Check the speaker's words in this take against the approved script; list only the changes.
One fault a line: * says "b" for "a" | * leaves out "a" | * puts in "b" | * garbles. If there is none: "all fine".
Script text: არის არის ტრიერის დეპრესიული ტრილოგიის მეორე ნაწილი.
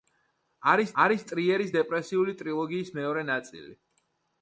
all fine